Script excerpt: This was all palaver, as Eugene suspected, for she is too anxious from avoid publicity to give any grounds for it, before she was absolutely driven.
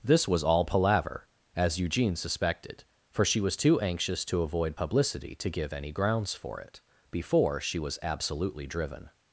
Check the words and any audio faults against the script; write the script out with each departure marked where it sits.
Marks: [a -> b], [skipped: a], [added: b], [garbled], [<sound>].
This was all palaver, as Eugene suspected, for she [is -> was] too anxious [from -> to] avoid publicity to give any grounds for it, before she was absolutely driven.